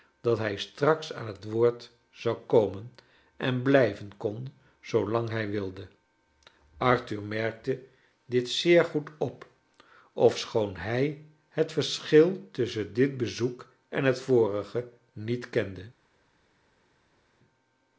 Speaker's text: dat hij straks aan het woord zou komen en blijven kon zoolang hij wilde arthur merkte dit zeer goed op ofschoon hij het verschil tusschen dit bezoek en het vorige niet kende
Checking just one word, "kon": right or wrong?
right